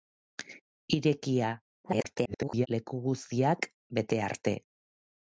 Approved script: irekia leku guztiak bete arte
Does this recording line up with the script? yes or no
no